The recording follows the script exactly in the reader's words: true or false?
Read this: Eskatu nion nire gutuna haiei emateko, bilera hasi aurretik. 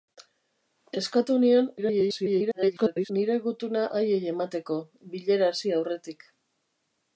false